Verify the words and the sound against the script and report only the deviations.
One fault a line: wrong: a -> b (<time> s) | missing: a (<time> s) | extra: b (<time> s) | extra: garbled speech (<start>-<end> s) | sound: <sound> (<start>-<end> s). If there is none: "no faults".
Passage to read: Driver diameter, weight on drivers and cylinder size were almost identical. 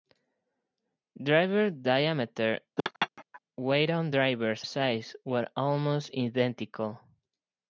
sound: laugh (2.8-3.4 s)
missing: and cylinder (4.7 s)